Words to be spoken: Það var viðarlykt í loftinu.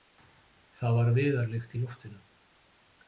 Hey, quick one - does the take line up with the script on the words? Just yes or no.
yes